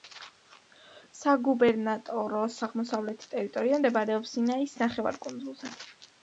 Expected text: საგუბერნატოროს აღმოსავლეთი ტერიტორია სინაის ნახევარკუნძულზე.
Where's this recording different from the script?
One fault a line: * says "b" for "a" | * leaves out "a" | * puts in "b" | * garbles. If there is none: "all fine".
* puts in "მდებარეობს"